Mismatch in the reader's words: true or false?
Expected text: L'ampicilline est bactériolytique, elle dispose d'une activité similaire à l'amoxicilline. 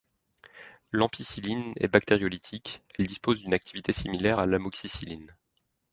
false